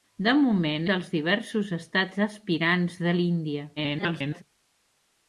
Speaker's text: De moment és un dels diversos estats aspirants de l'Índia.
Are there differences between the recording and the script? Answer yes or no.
yes